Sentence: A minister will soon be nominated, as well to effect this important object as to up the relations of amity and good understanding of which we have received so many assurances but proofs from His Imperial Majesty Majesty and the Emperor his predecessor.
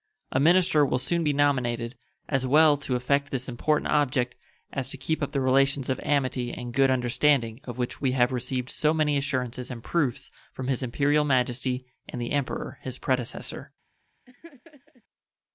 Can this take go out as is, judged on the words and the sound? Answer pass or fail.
fail